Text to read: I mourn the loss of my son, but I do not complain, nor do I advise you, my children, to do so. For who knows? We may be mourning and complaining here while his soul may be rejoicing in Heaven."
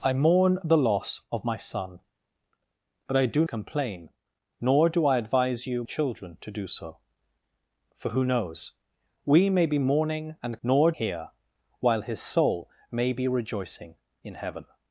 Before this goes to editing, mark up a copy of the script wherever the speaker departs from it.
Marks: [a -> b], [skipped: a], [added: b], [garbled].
I mourn the loss of my son, but I do [skipped: not] complain, nor do I advise you, [skipped: my] children, to do so. For who knows? We may be mourning and [complaining -> nor] here while his soul may be rejoicing in Heaven."